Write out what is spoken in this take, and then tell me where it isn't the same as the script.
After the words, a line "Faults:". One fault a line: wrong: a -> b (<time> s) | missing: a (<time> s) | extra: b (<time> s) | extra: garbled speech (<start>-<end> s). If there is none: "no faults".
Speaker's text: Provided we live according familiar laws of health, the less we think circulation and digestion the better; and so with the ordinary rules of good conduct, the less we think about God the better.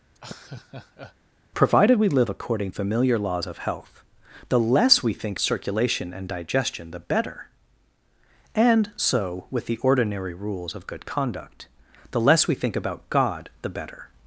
Provided we live according familiar laws of health, the less we think circulation and digestion the better; and so with the ordinary rules of good conduct, the less we think about God the better.
Faults:
no faults